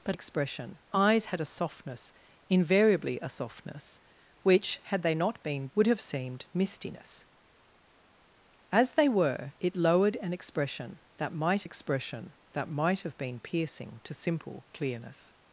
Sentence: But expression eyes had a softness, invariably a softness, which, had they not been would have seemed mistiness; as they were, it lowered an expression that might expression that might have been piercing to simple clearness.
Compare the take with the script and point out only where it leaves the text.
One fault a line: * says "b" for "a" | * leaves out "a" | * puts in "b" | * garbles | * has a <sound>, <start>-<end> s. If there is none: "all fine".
all fine